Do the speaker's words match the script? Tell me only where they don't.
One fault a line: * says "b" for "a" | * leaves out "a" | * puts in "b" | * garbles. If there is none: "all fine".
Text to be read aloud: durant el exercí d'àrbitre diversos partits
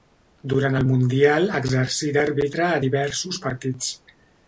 * puts in "mundial"
* puts in "a"